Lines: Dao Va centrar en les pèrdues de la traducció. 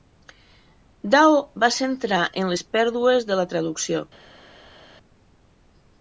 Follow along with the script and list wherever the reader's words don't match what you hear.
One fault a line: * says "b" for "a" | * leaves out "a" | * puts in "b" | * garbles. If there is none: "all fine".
all fine